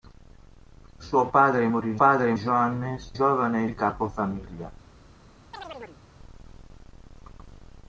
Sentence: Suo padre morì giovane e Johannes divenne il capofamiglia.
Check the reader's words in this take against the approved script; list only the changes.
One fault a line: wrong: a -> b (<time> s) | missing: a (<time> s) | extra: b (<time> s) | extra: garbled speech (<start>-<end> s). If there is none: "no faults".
wrong: giovane -> padre (1.9 s)
wrong: divenne -> giovane (3.1 s)